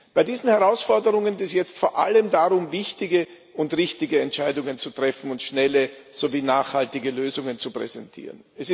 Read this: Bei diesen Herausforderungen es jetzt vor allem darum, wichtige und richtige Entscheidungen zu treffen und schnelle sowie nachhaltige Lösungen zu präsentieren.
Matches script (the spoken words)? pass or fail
pass